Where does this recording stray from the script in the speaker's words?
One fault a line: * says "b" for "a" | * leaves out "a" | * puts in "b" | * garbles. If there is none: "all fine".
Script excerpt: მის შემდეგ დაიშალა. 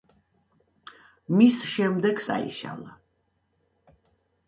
all fine